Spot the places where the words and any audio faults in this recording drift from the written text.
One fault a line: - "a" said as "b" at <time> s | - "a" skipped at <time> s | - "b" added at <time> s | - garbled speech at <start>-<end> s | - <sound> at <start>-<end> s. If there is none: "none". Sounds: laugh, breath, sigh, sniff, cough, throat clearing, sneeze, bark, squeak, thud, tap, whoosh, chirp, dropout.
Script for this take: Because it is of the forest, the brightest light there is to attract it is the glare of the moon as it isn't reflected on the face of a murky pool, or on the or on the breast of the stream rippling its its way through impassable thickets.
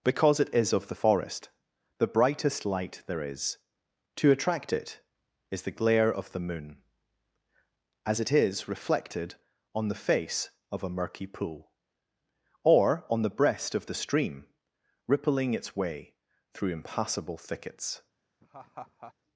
- "isn't" said as "is" at 8.3 s
- "or on the" skipped at 13.4 s
- "its" skipped at 15.7 s
- laugh at 18.4-19.1 s